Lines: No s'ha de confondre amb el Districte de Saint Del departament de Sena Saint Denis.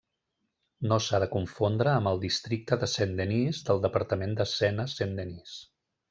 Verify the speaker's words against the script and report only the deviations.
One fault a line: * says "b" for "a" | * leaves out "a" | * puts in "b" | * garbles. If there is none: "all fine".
* puts in "Denis"